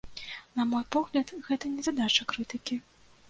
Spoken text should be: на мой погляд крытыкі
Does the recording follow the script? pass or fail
fail